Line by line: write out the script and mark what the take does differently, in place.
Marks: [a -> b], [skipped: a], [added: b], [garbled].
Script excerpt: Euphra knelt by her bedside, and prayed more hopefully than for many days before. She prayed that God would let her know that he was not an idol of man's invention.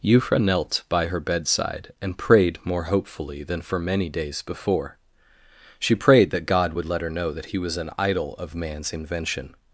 Euphra knelt by her bedside, and prayed more hopefully than for many days before. She prayed that God would let her know that he was [skipped: not] an idol of man's invention.